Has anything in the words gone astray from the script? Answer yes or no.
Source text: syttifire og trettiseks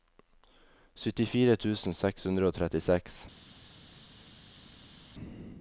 yes